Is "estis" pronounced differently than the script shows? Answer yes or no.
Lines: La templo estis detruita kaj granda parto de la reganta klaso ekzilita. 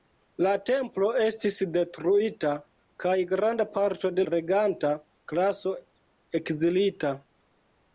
no